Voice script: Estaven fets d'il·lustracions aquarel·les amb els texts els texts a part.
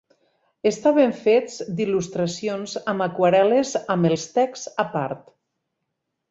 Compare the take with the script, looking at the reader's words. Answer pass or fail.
fail